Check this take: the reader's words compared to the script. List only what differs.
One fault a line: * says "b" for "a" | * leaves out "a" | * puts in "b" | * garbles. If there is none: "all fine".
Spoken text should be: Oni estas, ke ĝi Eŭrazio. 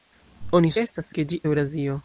all fine